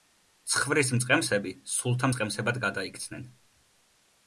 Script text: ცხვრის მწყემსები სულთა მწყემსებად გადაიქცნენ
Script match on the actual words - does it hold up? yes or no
yes